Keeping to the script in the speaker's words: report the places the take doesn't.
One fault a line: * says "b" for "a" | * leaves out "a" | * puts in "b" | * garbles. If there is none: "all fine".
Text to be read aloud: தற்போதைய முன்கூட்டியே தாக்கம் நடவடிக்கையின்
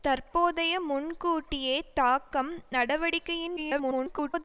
* garbles